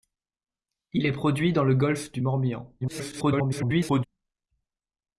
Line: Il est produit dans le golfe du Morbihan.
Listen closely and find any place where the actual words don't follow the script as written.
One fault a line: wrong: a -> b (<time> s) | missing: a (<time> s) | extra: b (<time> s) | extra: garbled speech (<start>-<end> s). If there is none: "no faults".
extra: garbled speech (2.8-4.0 s)